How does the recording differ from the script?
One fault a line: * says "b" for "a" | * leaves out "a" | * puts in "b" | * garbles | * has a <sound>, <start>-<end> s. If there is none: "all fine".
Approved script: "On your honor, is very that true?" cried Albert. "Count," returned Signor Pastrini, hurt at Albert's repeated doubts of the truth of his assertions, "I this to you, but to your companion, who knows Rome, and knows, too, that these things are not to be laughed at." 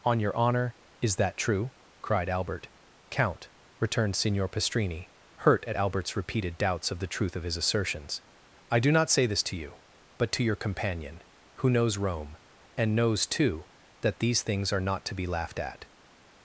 * leaves out "very"
* puts in "do not say"